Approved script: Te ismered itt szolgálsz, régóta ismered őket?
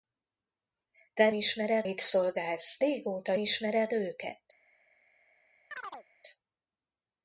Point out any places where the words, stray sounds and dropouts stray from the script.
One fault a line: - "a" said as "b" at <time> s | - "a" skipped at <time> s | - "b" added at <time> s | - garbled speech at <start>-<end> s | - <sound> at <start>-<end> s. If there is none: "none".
- chirp at 5.7-6.1 s